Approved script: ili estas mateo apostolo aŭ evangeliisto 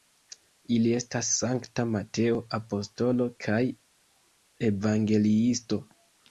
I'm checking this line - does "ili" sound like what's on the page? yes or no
yes